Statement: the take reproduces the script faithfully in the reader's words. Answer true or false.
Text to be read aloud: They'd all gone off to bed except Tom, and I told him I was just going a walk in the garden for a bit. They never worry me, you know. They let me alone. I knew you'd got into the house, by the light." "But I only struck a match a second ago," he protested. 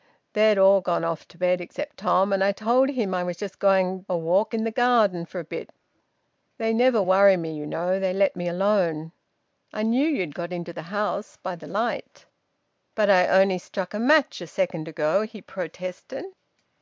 true